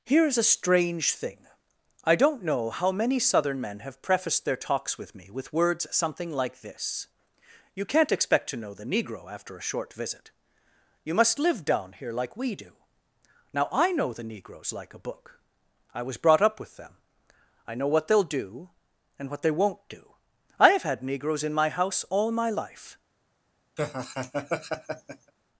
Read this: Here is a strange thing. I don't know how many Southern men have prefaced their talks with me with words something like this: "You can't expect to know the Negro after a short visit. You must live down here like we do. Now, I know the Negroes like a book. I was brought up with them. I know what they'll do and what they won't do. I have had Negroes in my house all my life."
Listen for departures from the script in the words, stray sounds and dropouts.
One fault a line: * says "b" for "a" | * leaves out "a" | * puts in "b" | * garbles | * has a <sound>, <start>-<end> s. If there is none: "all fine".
* has a laugh, 23.8-25.3 s